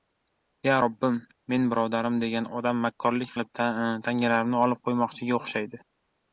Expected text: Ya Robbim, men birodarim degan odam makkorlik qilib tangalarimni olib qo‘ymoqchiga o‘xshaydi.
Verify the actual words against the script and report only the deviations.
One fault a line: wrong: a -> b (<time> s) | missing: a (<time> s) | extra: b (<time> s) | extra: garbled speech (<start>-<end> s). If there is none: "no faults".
no faults